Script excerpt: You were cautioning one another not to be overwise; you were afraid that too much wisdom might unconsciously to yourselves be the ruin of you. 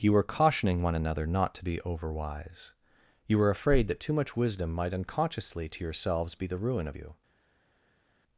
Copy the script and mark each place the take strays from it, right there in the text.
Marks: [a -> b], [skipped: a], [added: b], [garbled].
You were cautioning one another not to be overwise; you were afraid that too much wisdom might unconsciously to yourselves be the ruin of you.